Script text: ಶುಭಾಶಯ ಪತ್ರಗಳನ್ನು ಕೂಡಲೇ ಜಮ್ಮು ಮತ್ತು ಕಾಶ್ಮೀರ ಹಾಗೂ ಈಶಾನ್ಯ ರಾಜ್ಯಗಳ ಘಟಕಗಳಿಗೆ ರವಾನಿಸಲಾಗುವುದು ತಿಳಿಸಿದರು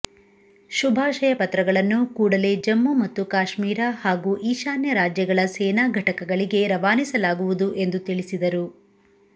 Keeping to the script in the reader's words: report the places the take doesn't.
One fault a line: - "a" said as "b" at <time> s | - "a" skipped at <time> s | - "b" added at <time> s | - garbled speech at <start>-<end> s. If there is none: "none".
- "ಸೇನಾ" added at 5.5 s
- "ಎಂದು" added at 7.8 s